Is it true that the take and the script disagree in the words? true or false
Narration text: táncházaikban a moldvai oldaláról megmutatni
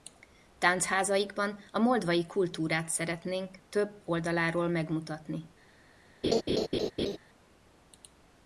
true